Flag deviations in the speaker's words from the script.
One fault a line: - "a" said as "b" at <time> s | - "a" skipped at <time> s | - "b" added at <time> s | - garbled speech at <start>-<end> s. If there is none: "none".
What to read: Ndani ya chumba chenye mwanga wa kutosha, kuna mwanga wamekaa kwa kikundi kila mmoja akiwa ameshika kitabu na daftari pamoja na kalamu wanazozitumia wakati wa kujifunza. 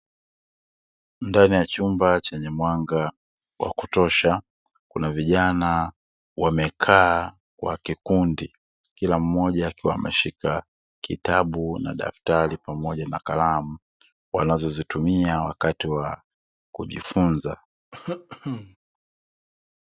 - "mwanga" said as "vijana" at 5.1 s